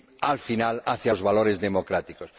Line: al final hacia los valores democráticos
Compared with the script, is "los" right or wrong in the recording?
right